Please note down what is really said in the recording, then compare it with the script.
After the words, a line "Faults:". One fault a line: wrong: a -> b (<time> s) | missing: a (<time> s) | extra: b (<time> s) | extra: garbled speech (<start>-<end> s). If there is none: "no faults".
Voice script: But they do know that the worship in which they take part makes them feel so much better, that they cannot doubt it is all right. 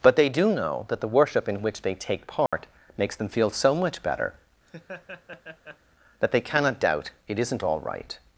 But they do know that the worship in which they take part makes them feel so much better, that they cannot doubt it isn't all right.
Faults:
wrong: is -> isn't (7.4 s)